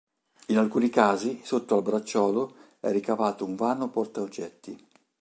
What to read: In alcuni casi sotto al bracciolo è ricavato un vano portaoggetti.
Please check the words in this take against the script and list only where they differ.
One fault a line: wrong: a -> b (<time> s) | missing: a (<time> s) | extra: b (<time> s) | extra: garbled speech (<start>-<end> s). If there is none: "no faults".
no faults